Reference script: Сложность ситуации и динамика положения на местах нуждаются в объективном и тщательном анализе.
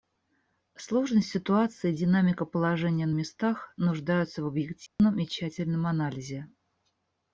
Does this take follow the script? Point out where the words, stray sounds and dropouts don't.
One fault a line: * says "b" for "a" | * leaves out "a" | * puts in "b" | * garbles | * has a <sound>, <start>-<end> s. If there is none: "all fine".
* has a dropout, 4.9-5.0 s